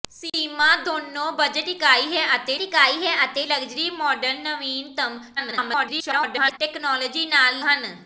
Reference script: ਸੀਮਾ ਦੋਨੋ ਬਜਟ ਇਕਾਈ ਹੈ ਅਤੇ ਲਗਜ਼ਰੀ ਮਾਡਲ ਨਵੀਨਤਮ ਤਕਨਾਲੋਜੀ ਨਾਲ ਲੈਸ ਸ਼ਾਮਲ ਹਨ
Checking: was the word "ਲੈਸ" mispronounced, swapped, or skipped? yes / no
yes